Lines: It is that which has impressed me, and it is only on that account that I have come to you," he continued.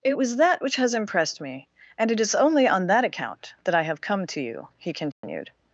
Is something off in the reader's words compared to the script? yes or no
yes